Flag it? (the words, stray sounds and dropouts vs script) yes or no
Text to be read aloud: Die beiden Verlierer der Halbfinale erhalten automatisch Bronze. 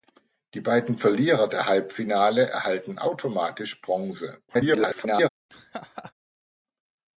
yes